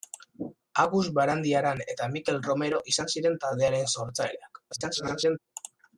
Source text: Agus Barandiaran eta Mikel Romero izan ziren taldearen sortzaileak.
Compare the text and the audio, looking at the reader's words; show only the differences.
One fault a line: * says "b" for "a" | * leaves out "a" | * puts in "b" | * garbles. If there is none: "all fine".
* garbles